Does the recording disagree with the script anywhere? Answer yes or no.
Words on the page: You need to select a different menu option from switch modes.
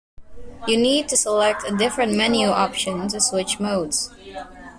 yes